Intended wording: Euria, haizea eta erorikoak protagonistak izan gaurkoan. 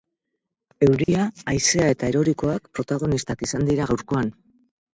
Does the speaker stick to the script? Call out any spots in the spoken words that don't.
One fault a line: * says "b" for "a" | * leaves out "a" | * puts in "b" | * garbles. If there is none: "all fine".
* puts in "dira"